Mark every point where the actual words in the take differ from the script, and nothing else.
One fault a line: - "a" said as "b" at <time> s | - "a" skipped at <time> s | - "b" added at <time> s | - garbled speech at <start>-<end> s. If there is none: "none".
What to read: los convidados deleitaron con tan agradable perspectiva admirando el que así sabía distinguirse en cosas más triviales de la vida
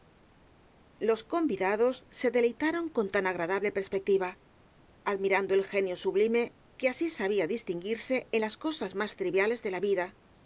- "se" added at 2.2 s
- "genio sublime" added at 5.6 s
- "las" added at 8.4 s